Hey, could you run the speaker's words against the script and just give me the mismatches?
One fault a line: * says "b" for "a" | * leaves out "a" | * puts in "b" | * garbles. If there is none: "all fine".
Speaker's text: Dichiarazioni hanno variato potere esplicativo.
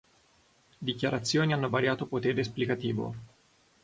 all fine